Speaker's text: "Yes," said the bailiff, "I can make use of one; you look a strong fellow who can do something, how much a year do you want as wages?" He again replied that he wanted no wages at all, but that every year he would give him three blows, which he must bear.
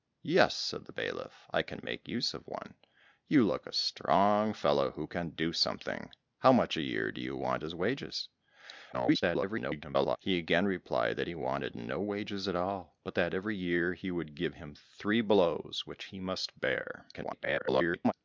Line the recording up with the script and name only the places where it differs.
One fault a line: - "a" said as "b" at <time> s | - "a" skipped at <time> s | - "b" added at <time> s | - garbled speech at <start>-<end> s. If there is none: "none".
- garbled speech at 8.9-10.2 s
- garbled speech at 17.1-18.1 s